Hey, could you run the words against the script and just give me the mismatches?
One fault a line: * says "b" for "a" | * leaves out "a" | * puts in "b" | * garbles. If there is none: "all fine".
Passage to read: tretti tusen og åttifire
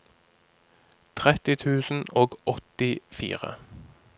all fine